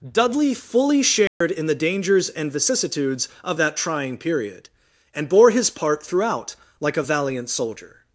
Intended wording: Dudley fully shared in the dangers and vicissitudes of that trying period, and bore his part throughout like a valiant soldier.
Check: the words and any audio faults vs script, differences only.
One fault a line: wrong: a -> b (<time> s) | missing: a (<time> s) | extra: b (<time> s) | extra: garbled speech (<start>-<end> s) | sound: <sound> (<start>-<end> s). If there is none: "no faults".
sound: dropout (1.3-1.4 s)